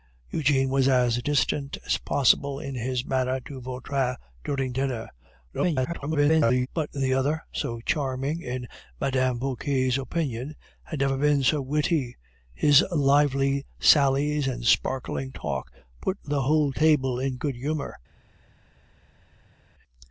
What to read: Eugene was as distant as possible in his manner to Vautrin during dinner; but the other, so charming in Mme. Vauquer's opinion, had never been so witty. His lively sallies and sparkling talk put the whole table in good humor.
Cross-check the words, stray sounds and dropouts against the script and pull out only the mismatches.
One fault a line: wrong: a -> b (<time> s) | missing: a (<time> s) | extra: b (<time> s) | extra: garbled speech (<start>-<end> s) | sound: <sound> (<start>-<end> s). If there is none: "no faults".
extra: garbled speech (5.5-6.7 s)